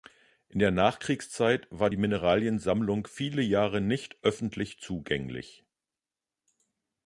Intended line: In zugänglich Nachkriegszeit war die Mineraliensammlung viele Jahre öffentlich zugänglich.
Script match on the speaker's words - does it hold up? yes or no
no